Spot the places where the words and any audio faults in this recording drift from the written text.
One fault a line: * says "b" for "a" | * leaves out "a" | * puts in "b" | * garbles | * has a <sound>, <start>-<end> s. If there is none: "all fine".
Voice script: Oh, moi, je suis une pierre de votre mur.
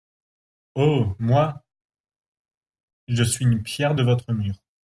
all fine